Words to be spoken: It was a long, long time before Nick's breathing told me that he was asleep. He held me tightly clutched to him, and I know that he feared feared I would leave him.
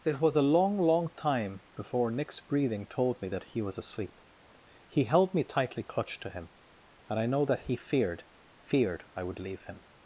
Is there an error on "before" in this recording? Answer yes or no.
no